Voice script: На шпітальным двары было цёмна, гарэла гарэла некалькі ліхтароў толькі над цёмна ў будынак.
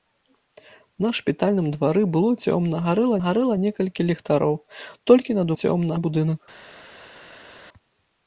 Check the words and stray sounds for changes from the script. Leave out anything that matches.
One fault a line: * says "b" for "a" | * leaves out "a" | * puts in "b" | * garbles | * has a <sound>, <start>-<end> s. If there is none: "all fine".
all fine